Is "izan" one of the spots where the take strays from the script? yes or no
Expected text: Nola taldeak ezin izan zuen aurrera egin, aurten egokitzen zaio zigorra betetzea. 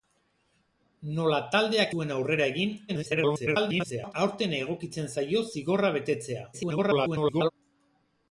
yes